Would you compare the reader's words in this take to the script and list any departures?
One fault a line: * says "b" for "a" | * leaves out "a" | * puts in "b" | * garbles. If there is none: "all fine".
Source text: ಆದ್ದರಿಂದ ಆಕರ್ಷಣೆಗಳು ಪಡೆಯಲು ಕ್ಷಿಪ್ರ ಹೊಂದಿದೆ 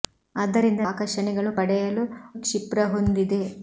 all fine